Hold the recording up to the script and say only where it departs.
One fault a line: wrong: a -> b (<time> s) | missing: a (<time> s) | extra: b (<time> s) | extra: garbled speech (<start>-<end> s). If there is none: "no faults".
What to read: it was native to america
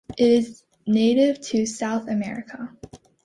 wrong: was -> is (0.3 s)
extra: south (1.7 s)